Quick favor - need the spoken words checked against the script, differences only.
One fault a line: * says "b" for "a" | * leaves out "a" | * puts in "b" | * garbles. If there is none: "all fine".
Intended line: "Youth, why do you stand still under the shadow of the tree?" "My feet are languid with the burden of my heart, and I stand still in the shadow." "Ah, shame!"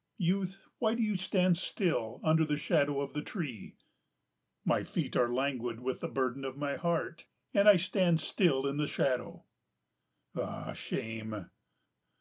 all fine